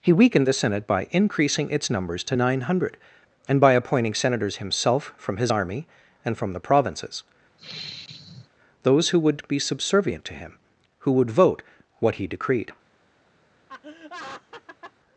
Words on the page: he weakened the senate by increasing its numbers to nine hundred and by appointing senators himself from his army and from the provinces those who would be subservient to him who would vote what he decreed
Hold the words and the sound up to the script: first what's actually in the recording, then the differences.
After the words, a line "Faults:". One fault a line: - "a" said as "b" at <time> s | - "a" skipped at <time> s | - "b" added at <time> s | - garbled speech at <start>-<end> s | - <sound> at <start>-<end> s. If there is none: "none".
he weakened the senate by increasing its numbers to nine hundred and by appointing senators himself from his army and from the provinces those who would be subservient to him who would vote what he decreed
Faults:
- sigh at 7.6-8.5 s
- laugh at 13.7-14.9 s